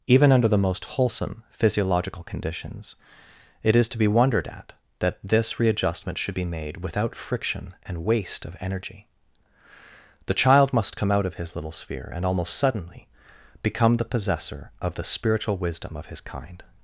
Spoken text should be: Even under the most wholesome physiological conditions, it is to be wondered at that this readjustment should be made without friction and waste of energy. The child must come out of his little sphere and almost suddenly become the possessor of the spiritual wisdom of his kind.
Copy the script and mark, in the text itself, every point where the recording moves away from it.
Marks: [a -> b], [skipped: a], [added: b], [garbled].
Even under the most wholesome physiological conditions, it is to be wondered at that this readjustment should be made without friction and waste of energy. The child must come out of his little sphere and almost suddenly become the possessor of the spiritual wisdom of his kind.